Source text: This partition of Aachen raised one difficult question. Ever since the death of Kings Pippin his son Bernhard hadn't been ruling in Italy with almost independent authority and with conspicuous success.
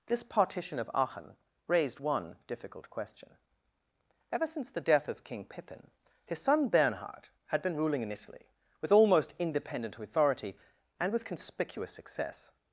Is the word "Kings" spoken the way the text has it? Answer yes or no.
no